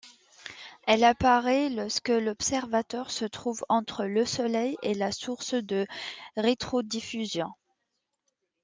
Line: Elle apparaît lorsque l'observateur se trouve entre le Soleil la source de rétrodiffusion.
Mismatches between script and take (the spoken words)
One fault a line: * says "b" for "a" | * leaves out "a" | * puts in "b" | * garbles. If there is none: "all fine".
* puts in "et"